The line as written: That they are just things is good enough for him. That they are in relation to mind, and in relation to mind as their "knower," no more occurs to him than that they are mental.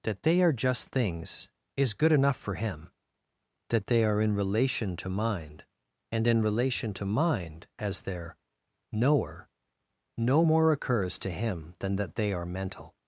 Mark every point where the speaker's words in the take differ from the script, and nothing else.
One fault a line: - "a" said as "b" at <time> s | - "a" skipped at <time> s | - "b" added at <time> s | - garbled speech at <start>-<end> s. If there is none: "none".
none